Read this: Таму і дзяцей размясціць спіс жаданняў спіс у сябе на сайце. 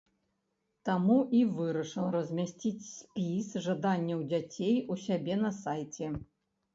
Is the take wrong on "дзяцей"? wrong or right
wrong